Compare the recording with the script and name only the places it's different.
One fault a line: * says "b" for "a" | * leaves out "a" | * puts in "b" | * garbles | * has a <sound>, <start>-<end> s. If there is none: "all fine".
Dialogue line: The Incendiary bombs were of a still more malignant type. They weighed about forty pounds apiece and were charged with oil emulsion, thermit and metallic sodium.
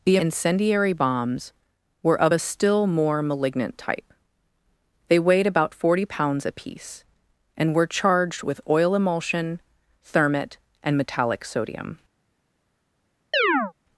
* has a chirp, 13.3-13.7 s